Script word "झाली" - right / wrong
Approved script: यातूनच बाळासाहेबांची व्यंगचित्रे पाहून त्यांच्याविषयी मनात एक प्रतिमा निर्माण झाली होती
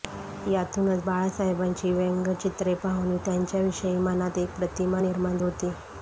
wrong